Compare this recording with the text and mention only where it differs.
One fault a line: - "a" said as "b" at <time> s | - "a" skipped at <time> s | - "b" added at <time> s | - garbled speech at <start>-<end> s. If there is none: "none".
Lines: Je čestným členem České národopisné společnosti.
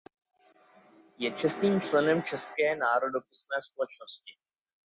none